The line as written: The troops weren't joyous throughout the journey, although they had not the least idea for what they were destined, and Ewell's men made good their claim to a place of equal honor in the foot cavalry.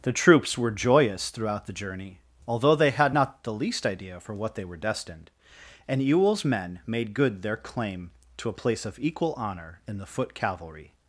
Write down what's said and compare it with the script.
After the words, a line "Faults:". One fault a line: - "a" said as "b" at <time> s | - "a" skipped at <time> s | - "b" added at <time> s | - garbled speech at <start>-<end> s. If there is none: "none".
The troops were joyous throughout the journey, although they had not the least idea for what they were destined, and Ewell's men made good their claim to a place of equal honor in the foot cavalry.
Faults:
- "weren't" said as "were" at 0.6 s